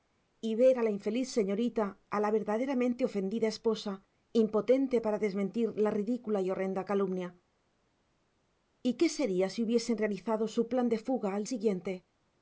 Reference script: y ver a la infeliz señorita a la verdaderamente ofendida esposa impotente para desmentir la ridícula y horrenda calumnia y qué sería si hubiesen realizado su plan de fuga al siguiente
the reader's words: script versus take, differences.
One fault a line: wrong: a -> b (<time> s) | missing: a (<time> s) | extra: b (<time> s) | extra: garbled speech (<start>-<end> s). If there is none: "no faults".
no faults